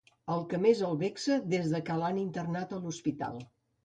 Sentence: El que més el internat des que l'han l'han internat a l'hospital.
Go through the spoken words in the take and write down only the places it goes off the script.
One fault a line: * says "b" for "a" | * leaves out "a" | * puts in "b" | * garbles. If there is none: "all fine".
* says "vexa" for "internat"
* leaves out "l'han"